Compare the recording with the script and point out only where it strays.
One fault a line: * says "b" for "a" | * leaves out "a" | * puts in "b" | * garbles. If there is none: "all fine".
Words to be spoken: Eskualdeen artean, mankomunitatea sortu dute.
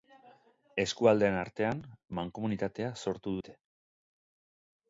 all fine